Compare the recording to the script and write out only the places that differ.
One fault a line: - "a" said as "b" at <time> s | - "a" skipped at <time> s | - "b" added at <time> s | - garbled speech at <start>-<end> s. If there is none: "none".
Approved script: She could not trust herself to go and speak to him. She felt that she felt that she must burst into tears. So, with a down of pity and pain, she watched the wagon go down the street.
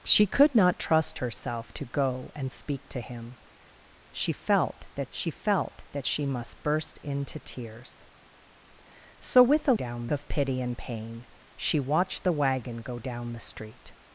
none